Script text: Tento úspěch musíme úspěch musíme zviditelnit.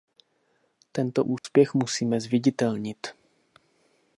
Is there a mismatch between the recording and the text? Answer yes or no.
yes